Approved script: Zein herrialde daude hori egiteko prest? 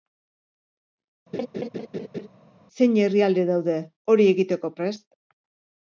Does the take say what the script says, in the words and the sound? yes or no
no